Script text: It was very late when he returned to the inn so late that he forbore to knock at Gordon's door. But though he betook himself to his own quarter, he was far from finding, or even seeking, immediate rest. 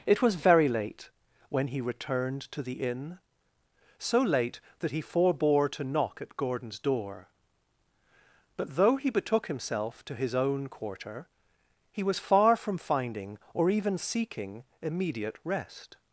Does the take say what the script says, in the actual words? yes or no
yes